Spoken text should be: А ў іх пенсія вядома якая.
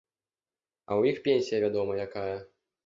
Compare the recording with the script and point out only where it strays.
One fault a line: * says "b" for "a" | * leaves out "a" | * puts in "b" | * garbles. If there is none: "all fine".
all fine